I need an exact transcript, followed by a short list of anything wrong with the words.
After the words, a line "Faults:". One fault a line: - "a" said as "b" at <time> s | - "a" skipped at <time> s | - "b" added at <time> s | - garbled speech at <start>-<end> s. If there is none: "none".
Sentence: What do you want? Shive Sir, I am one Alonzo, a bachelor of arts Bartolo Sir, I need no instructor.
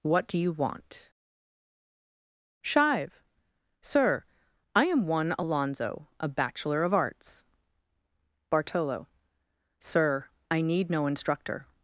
What do you want? Shive Sir, I am one Alonzo, a bachelor of arts Bartolo Sir, I need no instructor.
Faults:
none